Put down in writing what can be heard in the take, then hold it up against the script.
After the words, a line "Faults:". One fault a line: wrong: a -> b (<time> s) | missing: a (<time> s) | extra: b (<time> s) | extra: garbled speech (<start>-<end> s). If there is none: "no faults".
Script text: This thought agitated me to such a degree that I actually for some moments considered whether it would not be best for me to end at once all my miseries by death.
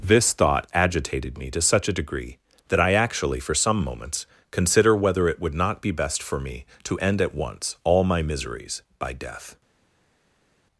This thought agitated me to such a degree that I actually for some moments consider whether it would not be best for me to end at once all my miseries by death.
Faults:
wrong: considered -> consider (4.5 s)